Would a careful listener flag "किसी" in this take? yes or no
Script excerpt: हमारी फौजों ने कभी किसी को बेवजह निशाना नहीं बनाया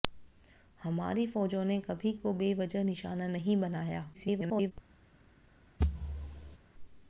yes